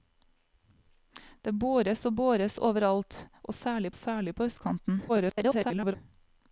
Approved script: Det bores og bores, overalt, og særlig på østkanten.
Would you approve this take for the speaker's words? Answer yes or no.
no